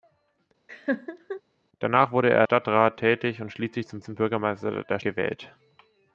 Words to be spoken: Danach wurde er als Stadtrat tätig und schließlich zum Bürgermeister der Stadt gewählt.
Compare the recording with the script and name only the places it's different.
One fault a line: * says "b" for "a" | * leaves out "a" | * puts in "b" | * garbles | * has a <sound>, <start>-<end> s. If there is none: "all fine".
* has a laugh, 0.7-1.4 s
* leaves out "als"
* puts in "zum"
* leaves out "Stadt"